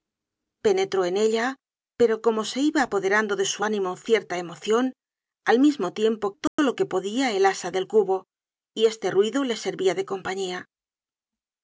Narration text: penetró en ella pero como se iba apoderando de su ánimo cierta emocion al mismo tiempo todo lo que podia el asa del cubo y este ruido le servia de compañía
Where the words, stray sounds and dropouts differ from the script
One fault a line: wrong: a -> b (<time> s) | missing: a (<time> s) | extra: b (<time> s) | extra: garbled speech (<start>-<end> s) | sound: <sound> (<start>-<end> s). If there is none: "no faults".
sound: dropout (6.5-6.6 s)